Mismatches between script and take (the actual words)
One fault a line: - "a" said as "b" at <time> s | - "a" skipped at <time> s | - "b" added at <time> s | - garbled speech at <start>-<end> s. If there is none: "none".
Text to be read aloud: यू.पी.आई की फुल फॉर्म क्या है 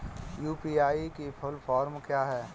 none